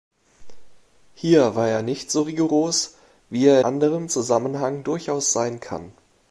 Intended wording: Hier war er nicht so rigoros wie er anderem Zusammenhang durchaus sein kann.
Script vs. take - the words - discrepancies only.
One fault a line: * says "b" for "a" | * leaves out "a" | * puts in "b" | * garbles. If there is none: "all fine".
all fine